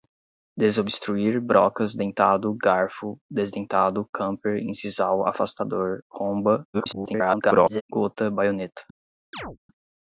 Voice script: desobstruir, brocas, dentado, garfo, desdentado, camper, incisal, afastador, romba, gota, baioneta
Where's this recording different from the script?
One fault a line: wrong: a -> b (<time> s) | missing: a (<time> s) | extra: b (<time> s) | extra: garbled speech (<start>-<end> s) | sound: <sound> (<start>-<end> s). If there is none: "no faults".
extra: garbled speech (6.7-7.8 s)
sound: chirp (9.3-9.6 s)